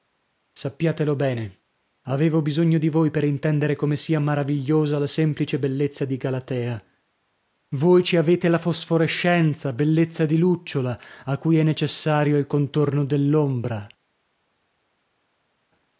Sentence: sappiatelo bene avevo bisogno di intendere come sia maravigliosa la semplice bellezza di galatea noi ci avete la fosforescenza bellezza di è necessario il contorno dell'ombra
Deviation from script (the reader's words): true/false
true